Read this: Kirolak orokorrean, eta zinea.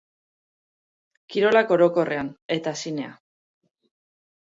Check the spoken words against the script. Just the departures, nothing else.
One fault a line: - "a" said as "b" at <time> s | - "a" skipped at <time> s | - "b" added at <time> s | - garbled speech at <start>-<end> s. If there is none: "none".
none